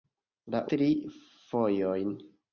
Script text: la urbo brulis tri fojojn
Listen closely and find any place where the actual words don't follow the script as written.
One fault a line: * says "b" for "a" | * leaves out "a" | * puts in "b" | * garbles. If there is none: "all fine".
* leaves out "urbo brulis"